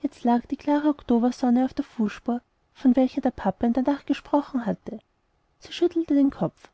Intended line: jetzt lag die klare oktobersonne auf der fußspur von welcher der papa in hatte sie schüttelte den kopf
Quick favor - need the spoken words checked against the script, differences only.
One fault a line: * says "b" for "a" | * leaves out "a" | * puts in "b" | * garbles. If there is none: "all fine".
* puts in "der nacht gesprochen"